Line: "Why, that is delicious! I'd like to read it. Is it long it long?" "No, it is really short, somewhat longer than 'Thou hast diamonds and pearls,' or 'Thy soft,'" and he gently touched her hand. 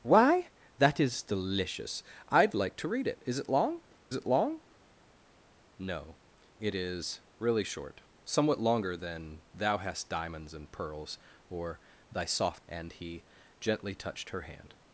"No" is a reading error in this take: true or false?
false